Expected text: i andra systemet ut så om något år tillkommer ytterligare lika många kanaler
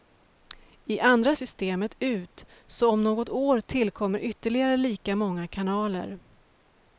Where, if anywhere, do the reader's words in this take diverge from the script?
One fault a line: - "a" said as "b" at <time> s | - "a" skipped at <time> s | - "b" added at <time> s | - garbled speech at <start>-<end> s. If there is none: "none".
none